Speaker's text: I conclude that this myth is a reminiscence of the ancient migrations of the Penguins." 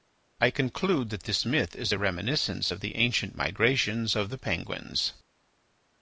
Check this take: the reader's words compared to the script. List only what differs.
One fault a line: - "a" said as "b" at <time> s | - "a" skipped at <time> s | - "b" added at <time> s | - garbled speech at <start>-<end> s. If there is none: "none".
none